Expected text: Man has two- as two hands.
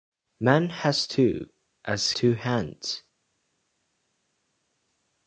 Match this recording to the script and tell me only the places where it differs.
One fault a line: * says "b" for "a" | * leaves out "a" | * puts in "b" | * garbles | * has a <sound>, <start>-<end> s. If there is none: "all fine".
all fine